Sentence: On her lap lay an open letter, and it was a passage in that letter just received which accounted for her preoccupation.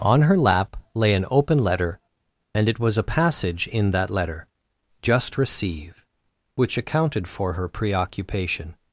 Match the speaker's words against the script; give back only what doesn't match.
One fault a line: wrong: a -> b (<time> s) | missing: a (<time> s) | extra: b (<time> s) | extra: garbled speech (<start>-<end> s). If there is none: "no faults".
wrong: received -> receive (5.4 s)